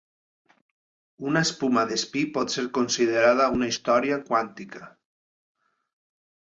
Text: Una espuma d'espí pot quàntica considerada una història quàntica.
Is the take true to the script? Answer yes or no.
no